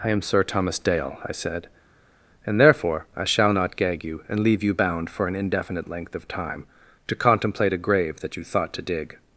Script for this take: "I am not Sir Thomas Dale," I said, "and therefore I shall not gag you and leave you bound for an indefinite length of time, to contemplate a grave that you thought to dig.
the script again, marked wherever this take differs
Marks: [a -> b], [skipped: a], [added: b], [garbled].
"I am [skipped: not] Sir Thomas Dale," I said, "and therefore I shall not gag you and leave you bound for an indefinite length of time, to contemplate a grave that you thought to dig.